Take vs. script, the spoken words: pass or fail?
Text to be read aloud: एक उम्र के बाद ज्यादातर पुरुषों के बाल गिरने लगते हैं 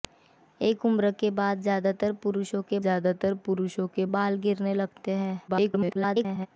fail